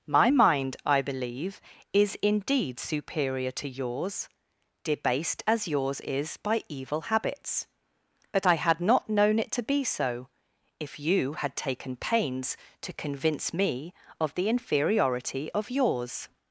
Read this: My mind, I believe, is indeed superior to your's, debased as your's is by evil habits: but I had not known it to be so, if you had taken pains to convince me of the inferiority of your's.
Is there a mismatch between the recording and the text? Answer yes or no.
no